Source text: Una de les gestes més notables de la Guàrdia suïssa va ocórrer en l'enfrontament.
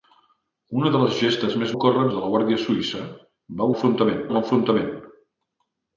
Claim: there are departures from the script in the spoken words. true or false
true